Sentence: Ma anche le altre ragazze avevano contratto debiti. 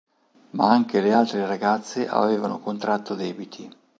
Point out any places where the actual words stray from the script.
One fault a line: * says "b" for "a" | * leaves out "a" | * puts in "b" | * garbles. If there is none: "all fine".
all fine